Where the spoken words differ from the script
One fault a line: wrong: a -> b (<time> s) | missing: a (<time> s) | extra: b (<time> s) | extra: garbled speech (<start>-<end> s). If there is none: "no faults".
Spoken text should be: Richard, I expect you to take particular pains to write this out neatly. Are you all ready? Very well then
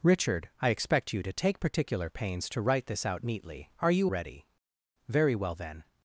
missing: all (4.1 s)